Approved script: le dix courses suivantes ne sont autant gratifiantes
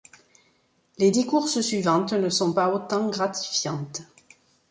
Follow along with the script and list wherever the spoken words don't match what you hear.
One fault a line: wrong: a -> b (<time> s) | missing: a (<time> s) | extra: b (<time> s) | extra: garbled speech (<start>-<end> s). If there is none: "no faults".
wrong: le -> les (1.0 s)
extra: pas (2.5 s)